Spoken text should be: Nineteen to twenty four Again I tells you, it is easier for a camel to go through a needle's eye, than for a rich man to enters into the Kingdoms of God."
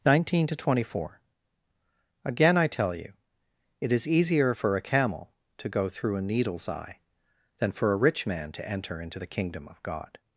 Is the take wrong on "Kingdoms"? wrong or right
wrong